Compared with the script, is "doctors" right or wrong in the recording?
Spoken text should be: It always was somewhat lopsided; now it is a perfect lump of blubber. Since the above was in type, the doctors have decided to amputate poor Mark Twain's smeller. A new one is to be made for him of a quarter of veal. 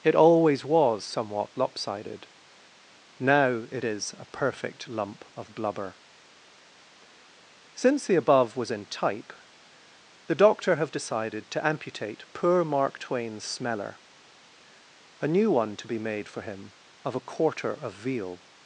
wrong